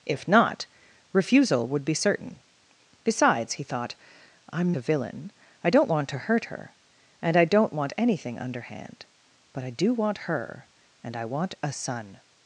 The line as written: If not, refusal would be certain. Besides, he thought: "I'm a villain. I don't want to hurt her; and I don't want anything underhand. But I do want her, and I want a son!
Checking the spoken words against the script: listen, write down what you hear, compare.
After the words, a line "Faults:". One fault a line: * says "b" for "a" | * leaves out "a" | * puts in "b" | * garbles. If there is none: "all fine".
If not, refusal would be certain. Besides, he thought: "I'm a villain. I don't want to hurt her; and I don't want anything underhand. But I do want her, and I want a son!
Faults:
all fine